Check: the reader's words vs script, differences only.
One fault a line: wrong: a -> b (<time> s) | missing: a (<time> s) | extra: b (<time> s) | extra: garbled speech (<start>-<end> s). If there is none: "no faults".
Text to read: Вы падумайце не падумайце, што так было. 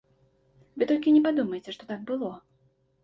wrong: падумайце -> толькі (0.9 s)